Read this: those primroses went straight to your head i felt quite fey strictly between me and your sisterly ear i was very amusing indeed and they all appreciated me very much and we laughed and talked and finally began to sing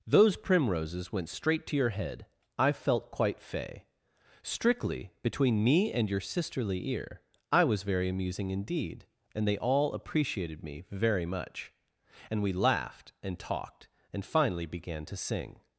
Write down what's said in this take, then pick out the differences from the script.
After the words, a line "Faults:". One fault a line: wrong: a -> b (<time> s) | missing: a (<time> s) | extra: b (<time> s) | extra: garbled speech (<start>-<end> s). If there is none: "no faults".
those primroses went straight to your head i felt quite fey strictly between me and your sisterly ear i was very amusing indeed and they all appreciated me very much and we laughed and talked and finally began to sing
Faults:
no faults